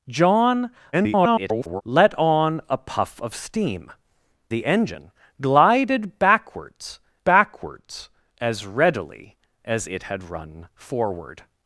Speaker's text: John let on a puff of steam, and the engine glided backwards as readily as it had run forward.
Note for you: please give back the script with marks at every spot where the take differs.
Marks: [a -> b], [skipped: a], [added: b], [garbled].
John [garbled] let on a puff of steam, [skipped: and] the engine glided backwards [added: backwards] as readily as it had run forward.